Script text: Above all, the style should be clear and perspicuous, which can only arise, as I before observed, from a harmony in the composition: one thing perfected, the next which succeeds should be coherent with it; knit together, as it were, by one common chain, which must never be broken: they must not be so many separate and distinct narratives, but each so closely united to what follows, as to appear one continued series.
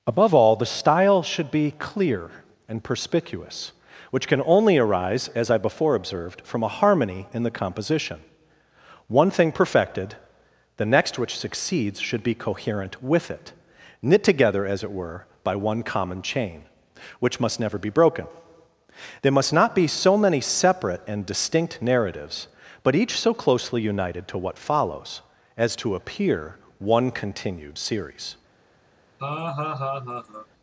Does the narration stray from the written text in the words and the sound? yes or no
yes